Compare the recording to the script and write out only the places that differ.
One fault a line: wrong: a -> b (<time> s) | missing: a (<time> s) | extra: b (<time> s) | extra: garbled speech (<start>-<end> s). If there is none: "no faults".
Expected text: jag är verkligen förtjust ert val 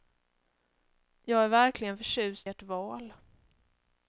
no faults